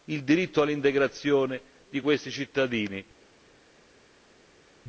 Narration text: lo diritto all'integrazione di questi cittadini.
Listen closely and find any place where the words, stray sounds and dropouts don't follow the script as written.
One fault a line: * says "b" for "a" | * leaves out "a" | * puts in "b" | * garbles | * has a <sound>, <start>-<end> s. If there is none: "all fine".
* says "il" for "lo"